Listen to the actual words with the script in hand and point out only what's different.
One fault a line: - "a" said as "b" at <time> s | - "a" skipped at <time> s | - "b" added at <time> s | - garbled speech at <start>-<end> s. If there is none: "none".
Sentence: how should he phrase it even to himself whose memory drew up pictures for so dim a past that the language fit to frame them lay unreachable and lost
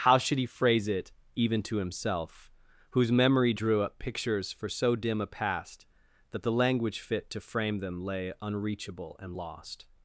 none